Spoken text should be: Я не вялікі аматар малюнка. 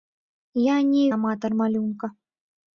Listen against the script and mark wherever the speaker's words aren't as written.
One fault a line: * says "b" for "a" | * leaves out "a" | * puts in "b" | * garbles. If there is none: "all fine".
* leaves out "вялікі"